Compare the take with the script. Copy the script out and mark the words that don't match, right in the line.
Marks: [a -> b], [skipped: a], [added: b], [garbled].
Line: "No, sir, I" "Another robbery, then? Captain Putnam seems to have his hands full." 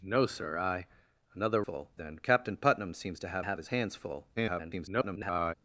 "No, sir, I" "Another [robbery, -> full] then? Captain Putnam seems to have [added: have] his hands full." [garbled]